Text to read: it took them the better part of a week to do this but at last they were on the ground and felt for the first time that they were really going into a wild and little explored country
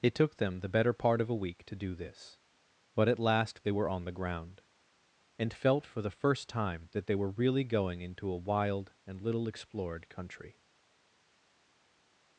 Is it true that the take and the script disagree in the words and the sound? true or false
false